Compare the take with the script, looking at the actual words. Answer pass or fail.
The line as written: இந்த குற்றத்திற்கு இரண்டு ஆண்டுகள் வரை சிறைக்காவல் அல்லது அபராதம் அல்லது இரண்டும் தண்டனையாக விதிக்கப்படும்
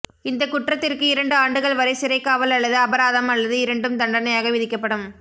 pass